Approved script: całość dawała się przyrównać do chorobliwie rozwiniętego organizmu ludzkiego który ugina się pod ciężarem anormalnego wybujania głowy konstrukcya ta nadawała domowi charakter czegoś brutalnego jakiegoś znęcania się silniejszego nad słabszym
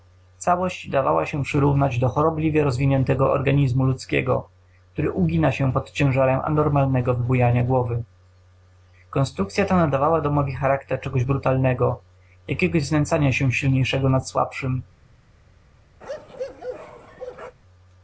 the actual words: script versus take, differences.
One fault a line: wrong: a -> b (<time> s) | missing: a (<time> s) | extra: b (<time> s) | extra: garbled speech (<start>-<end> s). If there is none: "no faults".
no faults